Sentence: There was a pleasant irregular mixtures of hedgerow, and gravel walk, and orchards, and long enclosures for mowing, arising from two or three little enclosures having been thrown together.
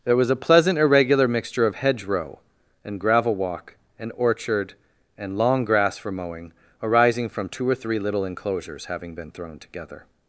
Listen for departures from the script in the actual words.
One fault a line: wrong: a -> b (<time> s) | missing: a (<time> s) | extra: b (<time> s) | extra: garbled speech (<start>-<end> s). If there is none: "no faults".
wrong: mixtures -> mixture (1.3 s)
wrong: orchards -> orchard (4.2 s)
wrong: enclosures -> grass (5.7 s)